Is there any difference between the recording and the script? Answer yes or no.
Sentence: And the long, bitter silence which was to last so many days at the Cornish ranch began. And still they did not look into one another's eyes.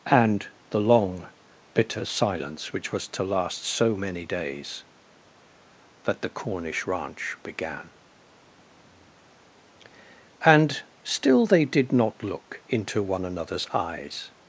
yes